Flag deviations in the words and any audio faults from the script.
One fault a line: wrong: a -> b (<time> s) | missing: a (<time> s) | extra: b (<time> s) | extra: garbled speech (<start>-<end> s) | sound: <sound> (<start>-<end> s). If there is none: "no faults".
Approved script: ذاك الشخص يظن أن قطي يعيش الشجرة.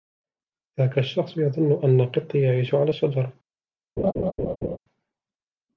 extra: على (2.8 s)
sound: laugh (4.0-4.8 s)